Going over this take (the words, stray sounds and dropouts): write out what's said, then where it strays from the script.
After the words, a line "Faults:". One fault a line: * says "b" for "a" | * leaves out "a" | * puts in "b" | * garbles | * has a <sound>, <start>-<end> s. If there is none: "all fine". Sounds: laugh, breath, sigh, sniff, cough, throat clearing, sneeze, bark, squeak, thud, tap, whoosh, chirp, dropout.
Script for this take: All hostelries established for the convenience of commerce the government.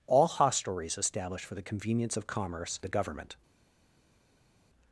All hostelries established for the convenience of commerce the government.
Faults:
all fine